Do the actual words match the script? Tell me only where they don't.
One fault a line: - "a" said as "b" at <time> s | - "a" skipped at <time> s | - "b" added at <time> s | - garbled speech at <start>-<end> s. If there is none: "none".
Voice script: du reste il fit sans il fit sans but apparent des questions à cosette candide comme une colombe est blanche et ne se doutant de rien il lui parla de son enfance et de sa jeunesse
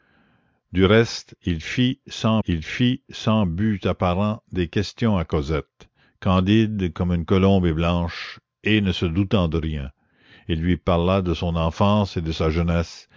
none